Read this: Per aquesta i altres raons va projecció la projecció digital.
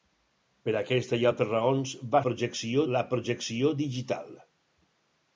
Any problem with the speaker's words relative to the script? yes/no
no